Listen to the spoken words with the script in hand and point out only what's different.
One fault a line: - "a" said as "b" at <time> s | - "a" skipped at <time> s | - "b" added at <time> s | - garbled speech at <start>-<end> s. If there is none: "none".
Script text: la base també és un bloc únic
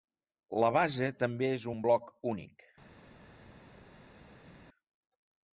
none